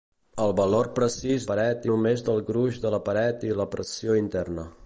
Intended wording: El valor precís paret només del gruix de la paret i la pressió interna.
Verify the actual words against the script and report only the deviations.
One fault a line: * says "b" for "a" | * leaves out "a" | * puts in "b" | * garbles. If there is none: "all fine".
all fine